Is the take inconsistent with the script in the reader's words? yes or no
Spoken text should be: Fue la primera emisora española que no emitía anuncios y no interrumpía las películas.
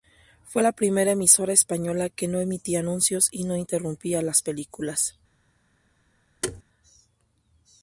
no